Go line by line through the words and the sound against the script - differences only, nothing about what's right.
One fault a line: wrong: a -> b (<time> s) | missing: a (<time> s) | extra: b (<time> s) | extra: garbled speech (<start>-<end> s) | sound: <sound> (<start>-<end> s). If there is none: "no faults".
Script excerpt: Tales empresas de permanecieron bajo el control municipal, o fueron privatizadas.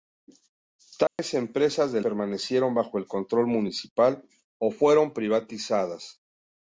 sound: dropout (1.1-1.2 s)